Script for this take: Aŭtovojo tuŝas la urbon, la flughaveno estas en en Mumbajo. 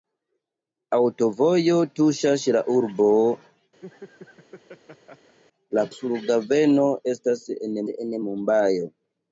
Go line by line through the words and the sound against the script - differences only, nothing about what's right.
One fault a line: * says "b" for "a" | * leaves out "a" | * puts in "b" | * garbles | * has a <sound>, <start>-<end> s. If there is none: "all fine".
* has a laugh, 3.8-5.4 s